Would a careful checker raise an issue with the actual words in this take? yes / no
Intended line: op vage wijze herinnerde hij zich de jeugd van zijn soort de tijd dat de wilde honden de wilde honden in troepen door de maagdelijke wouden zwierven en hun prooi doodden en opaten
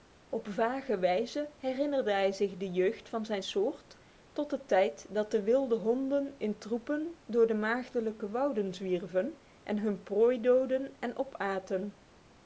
yes